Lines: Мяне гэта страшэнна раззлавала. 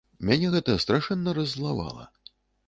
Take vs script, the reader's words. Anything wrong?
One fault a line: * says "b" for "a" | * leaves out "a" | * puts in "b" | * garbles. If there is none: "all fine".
all fine